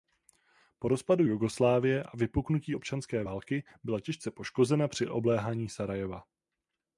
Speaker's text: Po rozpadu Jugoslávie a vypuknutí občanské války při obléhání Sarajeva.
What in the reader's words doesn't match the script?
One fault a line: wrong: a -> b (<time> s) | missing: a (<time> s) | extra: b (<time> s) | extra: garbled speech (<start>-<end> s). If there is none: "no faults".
extra: byla těžce poškozena (3.8 s)